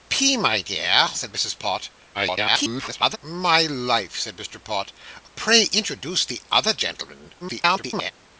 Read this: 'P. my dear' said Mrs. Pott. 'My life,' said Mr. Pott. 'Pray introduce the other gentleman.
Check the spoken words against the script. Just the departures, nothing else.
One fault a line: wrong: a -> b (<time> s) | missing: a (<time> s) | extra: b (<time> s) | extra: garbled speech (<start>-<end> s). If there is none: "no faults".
extra: garbled speech (2.1-3.2 s)
extra: garbled speech (7.4-8.1 s)